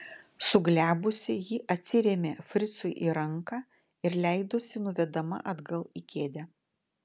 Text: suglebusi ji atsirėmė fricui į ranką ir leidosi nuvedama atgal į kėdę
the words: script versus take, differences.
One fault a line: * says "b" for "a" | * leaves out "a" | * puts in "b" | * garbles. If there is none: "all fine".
all fine